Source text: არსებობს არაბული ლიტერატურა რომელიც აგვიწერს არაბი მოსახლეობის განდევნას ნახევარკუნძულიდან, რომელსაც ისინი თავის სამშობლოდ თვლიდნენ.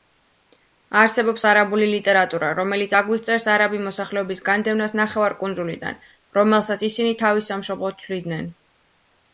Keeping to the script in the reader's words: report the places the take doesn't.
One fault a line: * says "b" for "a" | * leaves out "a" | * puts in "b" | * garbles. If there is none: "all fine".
all fine